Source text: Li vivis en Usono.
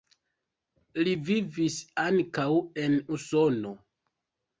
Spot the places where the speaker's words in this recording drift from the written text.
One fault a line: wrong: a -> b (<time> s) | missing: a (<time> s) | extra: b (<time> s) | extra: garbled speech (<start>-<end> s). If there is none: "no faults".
extra: ankaŭ (2.0 s)